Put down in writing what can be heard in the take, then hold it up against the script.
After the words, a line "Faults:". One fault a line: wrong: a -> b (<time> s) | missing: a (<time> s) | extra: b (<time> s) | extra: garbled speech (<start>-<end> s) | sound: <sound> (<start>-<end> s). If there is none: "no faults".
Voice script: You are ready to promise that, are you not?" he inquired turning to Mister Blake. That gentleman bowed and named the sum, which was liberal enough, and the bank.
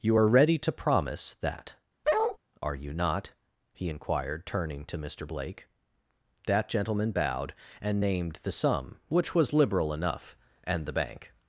You are ready to promise that, are you not?" he inquired turning to Mister Blake. That gentleman bowed and named the sum, which was liberal enough, and the bank.
Faults:
sound: bark (2.0-2.4 s)